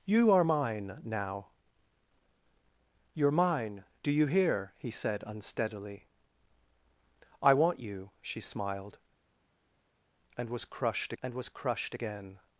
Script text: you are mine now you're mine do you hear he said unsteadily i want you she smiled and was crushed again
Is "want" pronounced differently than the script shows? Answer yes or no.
no